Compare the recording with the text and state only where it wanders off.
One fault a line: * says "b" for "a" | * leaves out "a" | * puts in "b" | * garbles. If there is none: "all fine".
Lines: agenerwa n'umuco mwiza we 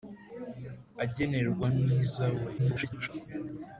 * leaves out "n'umuco"
* garbles